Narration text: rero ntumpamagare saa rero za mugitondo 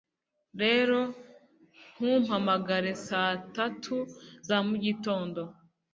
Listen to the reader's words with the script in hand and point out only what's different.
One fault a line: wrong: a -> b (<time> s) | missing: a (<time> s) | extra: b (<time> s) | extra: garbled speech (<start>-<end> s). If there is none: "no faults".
wrong: rero -> tatu (3.5 s)